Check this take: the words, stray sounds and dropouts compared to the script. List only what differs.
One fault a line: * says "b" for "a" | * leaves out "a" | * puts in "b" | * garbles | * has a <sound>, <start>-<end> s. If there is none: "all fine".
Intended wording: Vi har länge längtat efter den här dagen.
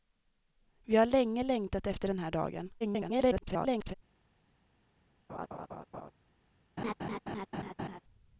* garbles
* has a laugh, 5.3-6.1 s
* has a laugh, 6.8-8.0 s